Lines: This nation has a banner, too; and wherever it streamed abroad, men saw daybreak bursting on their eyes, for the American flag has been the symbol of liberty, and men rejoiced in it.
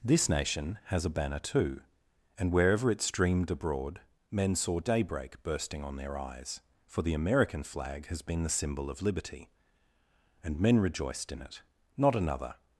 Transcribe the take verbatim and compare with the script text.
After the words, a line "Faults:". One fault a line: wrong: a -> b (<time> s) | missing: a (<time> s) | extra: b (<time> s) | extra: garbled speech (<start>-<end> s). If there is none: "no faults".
This nation has a banner, too; and wherever it streamed abroad, men saw daybreak bursting on their eyes, for the American flag has been the symbol of liberty, and men rejoiced in it. Not another
Faults:
extra: Not another (12.0 s)